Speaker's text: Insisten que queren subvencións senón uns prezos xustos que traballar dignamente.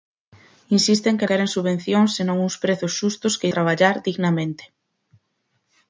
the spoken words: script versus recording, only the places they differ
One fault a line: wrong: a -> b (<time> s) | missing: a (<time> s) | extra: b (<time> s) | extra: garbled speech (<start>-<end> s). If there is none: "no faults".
no faults